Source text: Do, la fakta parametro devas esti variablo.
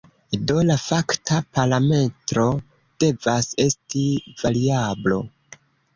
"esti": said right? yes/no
yes